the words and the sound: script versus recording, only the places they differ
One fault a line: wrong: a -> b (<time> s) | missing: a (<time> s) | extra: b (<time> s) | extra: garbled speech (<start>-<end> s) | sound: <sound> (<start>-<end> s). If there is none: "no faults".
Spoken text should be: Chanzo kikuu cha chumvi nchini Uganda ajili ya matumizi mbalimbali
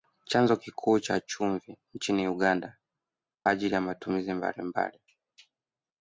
no faults